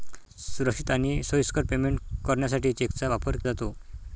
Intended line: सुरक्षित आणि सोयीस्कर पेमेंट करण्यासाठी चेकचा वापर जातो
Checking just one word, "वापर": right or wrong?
right